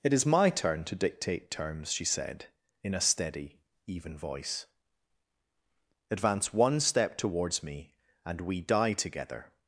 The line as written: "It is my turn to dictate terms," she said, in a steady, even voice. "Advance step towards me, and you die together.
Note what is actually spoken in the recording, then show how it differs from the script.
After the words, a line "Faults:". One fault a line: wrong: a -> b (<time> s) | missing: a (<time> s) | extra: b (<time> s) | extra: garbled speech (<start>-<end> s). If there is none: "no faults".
"It is my turn to dictate terms," she said, in a steady, even voice. "Advance one step towards me, and we die together.
Faults:
extra: one (6.5 s)
wrong: you -> we (8.4 s)